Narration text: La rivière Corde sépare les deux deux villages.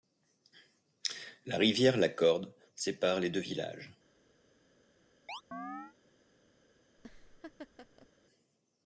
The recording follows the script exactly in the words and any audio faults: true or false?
false